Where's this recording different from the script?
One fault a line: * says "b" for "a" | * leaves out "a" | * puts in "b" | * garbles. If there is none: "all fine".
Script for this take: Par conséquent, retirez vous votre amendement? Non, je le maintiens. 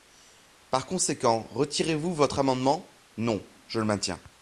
all fine